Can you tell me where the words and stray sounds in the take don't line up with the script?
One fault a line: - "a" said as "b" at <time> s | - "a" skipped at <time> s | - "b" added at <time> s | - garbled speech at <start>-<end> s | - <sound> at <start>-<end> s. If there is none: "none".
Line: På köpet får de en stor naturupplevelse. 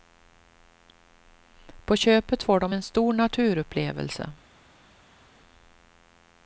none